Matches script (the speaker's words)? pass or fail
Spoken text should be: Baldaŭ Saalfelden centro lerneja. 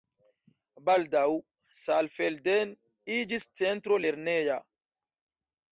fail